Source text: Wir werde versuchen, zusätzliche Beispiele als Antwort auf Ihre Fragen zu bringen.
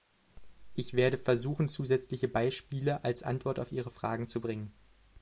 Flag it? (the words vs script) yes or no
yes